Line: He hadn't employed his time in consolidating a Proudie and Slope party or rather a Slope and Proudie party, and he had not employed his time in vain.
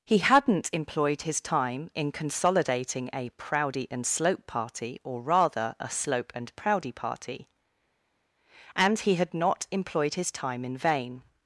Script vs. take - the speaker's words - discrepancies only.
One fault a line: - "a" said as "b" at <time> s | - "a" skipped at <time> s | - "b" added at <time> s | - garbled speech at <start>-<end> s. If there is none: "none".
none